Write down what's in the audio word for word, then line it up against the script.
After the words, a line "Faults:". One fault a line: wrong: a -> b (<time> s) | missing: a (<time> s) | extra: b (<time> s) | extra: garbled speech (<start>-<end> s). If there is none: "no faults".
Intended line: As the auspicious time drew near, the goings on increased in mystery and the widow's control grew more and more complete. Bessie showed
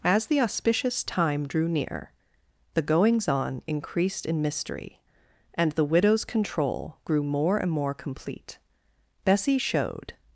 As the auspicious time drew near, the goings on increased in mystery and the widow's control grew more and more complete. Bessie showed
Faults:
no faults